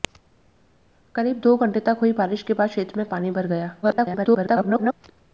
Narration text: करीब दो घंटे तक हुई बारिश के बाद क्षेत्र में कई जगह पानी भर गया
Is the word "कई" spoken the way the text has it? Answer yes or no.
no